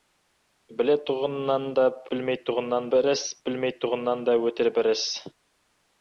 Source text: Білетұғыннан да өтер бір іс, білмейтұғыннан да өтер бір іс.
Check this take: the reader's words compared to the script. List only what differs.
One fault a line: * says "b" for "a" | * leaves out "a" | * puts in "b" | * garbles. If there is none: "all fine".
* says "білмейтұғыннан" for "өтер"